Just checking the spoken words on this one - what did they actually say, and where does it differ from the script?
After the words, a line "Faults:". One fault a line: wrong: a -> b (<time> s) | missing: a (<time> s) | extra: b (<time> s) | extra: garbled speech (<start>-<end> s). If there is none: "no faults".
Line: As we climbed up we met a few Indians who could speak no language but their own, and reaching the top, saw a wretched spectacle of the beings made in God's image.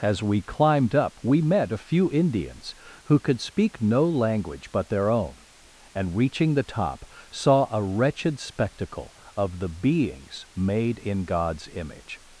As we climbed up we met a few Indians who could speak no language but their own, and reaching the top, saw a wretched spectacle of the beings made in God's image.
Faults:
no faults